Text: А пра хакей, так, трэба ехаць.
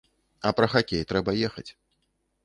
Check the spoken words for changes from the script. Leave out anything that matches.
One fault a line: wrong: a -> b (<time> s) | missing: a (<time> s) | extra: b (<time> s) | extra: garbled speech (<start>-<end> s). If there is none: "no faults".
missing: так (1.0 s)